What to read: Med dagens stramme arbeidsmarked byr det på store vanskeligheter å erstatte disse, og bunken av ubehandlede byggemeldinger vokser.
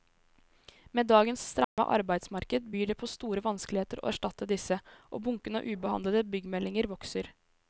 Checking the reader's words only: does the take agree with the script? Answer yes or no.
yes